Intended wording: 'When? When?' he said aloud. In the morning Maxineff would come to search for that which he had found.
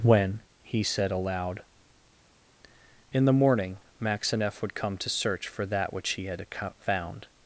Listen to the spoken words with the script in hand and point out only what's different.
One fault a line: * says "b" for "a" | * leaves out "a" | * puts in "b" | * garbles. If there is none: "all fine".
* leaves out "When"